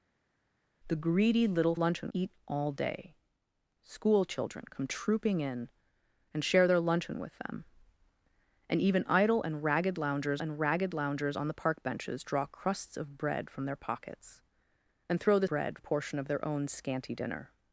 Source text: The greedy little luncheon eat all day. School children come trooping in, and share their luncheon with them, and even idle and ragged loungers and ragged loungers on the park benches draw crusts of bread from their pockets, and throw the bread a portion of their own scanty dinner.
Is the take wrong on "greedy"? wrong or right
right